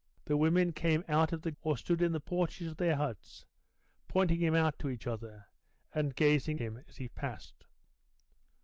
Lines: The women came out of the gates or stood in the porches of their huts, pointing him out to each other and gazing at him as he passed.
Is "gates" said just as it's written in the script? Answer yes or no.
no